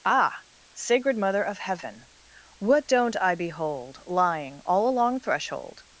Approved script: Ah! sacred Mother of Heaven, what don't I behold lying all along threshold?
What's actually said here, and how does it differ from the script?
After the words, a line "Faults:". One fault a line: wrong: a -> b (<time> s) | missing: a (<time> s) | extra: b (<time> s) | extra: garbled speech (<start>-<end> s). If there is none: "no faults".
Ah! sacred Mother of Heaven, what don't I behold lying all along threshold?
Faults:
no faults